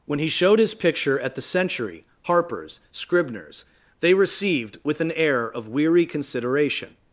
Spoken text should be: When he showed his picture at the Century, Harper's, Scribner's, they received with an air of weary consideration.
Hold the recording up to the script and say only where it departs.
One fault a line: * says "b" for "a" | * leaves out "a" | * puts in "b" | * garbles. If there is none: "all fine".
all fine